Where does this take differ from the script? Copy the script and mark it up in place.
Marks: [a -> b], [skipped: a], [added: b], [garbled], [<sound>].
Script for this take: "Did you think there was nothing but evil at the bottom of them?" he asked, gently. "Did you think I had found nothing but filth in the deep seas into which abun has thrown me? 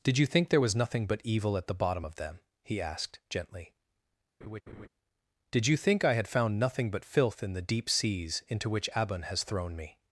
"Did you think there was nothing but evil at the bottom of them?" he asked, gently. [laugh] "Did you think I had found nothing but filth in the deep seas into which abun has thrown me?